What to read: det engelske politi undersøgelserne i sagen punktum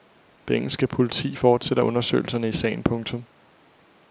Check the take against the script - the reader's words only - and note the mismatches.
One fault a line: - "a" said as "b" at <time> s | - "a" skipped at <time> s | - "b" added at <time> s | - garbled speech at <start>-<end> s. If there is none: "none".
- "fortsætter" added at 1.3 s